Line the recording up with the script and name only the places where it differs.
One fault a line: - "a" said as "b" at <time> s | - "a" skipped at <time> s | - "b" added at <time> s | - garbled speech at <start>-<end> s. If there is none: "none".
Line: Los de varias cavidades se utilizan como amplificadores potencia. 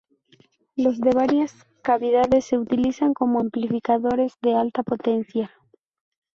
- "de alta" added at 4.4 s